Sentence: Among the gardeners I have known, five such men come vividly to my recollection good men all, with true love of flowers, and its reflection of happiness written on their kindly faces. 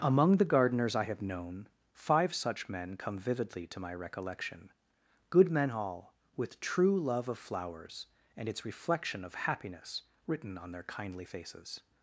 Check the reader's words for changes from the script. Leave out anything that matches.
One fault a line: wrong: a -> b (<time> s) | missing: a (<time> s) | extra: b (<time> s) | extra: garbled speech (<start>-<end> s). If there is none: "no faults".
no faults